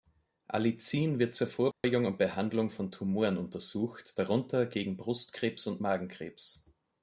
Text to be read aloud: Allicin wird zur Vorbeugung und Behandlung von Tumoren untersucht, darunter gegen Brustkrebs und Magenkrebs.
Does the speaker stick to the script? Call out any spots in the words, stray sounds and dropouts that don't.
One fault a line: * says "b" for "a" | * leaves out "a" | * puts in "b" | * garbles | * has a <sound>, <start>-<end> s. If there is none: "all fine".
* has a dropout, 1.7-1.8 s